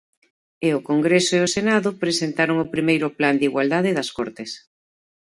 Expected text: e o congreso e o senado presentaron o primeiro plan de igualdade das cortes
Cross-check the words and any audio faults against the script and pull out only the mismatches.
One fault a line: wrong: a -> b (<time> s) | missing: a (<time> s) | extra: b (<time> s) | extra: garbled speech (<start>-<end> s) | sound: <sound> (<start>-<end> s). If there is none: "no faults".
no faults